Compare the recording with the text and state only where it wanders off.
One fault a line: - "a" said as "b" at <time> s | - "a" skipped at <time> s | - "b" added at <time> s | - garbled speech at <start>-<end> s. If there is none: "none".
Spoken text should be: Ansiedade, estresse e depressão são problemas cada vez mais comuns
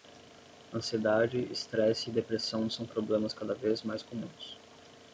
none